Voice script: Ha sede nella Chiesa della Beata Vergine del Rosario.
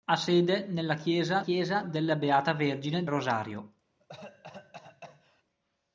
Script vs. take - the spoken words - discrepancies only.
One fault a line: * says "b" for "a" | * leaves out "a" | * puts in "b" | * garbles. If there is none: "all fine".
* puts in "Chiesa"
* leaves out "del"